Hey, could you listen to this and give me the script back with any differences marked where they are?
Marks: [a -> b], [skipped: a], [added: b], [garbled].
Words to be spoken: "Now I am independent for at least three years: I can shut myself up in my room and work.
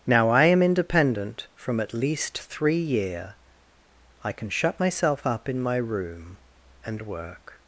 "Now I am independent [for -> from] at least three [years: -> year] I can shut myself up in my room and work.